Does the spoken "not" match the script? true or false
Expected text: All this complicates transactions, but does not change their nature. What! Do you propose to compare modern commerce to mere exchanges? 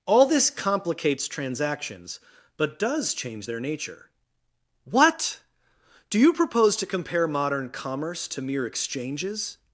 false